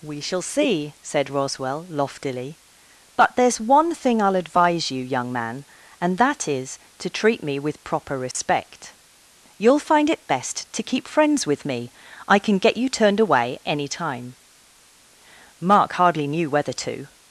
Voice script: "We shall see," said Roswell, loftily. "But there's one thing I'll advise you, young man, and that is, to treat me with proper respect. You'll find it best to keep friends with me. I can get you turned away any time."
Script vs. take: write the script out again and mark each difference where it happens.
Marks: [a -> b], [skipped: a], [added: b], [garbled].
"We shall see," said Roswell, loftily. "But there's one thing I'll advise you, young man, and that is, to treat me with proper respect. You'll find it best to keep friends with me. I can get you turned away any time." [added: Mark hardly knew whether to]